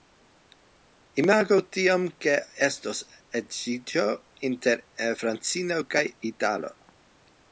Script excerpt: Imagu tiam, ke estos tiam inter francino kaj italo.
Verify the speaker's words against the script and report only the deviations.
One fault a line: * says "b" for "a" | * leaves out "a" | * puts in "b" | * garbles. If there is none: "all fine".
* says "edziĝo" for "tiam"